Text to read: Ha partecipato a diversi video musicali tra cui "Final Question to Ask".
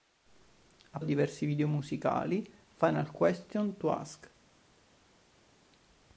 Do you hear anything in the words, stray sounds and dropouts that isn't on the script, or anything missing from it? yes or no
yes